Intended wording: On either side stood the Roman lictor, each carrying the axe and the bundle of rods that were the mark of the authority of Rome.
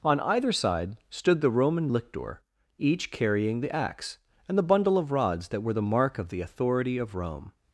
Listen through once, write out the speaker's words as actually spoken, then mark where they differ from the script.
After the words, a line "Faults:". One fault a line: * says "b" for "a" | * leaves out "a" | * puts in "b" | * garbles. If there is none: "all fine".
On either side stood the Roman lictor, each carrying the axe and the bundle of rods that were the mark of the authority of Rome.
Faults:
all fine